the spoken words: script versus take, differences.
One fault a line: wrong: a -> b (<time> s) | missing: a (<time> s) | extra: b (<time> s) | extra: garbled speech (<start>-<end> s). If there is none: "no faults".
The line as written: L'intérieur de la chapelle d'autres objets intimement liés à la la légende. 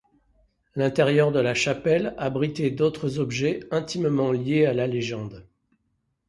extra: abritait (2.2 s)
missing: la (4.9 s)